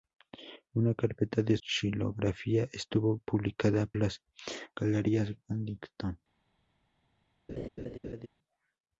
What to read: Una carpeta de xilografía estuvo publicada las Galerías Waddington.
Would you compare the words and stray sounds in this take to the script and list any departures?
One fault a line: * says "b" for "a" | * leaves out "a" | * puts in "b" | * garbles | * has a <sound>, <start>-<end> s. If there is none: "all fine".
* has a laugh, 7.5-8.3 s